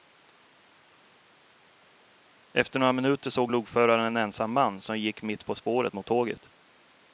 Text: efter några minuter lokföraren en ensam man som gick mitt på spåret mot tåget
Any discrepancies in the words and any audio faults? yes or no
yes